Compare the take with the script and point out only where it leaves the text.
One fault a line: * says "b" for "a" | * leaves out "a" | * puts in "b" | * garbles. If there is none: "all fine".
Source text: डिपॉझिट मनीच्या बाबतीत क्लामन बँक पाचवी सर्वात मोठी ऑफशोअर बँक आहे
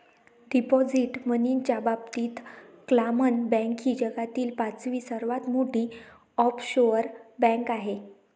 * puts in "ही जगातील"